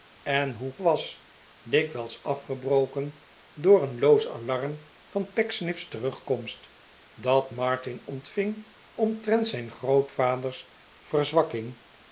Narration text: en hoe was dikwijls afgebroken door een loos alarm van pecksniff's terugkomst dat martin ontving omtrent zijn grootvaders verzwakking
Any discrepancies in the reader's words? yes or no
no